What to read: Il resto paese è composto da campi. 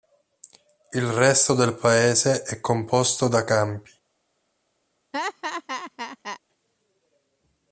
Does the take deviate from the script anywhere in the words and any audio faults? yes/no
yes